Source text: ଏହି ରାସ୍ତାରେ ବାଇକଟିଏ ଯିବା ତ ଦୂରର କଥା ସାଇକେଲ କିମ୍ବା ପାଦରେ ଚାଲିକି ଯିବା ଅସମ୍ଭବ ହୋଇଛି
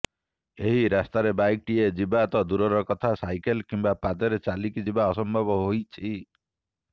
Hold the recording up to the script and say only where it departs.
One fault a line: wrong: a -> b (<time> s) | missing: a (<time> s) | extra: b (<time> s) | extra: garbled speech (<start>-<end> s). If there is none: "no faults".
no faults